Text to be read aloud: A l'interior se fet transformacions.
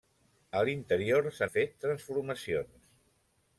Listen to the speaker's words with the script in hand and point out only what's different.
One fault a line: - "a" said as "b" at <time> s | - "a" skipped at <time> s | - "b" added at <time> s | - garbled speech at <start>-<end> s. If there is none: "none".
none